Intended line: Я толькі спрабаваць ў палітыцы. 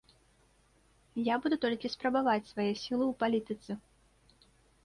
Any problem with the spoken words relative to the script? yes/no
yes